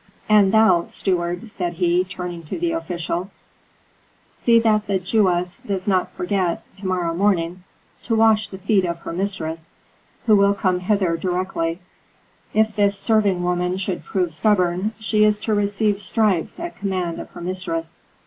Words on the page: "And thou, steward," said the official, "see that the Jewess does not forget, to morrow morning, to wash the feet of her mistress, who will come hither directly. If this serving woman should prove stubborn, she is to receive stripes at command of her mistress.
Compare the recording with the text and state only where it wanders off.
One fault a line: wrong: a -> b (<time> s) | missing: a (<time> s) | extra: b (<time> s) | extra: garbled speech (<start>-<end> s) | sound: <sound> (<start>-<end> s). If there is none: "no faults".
extra: he turning to (1.8 s)